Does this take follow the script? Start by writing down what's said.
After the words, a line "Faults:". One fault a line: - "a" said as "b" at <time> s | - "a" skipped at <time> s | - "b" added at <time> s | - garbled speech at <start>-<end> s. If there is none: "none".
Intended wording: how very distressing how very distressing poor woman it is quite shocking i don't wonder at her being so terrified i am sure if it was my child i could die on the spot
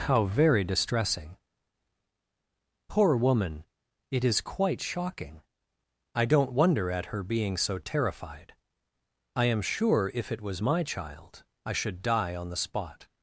how very distressing poor woman it is quite shocking i don't wonder at her being so terrified i am sure if it was my child i should die on the spot
Faults:
- "how very distressing" skipped at 1.4 s
- "could" said as "should" at 11.7 s